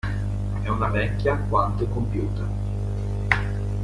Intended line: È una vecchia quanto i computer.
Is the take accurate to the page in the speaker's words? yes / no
yes